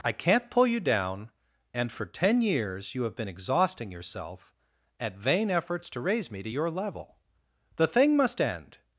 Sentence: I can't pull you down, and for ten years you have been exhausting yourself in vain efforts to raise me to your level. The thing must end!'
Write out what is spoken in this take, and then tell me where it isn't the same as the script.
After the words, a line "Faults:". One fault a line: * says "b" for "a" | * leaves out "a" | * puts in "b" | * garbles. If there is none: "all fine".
I can't pull you down, and for ten years you have been exhausting yourself at vain efforts to raise me to your level. The thing must end!'
Faults:
* says "at" for "in"